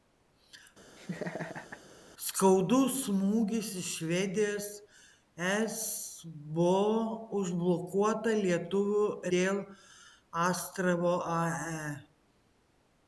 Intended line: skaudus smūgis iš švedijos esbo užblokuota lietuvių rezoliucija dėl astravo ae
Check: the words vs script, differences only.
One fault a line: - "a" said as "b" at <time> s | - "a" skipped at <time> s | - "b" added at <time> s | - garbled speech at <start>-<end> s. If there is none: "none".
- "rezoliucija" skipped at 9.0 s